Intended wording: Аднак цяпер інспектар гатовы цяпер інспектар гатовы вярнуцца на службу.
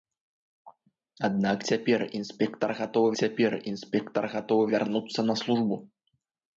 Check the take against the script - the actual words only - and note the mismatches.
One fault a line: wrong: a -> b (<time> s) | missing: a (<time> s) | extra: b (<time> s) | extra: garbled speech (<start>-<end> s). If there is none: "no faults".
no faults